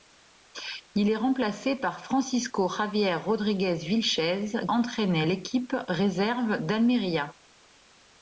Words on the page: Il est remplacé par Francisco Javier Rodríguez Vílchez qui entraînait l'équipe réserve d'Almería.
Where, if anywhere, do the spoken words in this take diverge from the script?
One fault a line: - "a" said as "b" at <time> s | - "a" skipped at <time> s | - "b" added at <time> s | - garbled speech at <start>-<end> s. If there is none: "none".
- "qui" skipped at 4.5 s